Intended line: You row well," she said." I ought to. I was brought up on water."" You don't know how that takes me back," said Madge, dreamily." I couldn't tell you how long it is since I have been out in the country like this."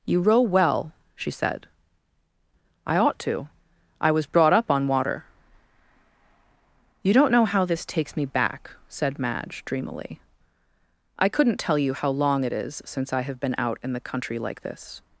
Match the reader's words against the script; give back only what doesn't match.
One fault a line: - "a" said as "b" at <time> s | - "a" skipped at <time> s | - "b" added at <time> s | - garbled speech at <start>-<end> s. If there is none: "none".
- "that" said as "this" at 7.7 s